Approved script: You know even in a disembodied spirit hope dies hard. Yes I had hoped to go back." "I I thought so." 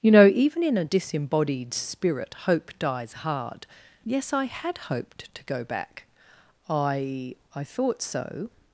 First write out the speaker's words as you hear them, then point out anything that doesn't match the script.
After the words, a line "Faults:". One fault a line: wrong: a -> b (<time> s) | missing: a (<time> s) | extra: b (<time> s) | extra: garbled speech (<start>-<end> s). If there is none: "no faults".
You know even in a disembodied spirit hope dies hard. Yes I had hoped to go back." "I I thought so."
Faults:
no faults